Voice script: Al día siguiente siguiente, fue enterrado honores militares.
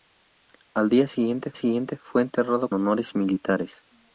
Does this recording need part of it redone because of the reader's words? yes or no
no